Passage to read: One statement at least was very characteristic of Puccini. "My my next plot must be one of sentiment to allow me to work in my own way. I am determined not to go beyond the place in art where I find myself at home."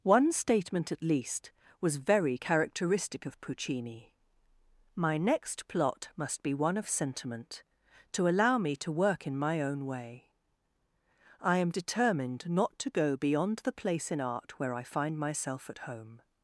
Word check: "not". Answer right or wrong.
right